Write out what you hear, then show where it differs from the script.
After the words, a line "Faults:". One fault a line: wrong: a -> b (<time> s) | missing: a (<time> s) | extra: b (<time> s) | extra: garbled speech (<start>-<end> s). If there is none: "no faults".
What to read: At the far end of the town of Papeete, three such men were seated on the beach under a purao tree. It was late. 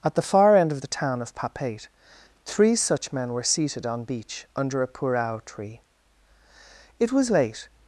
At the far end of the town of Papeete, three such men were seated on beach under a purao tree. It was late.
Faults:
missing: the (4.0 s)